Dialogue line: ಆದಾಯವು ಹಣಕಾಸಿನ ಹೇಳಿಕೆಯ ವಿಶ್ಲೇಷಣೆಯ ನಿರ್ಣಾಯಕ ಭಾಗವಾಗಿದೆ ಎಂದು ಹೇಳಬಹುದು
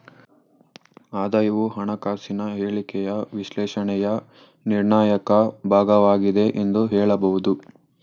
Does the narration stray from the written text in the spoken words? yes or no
no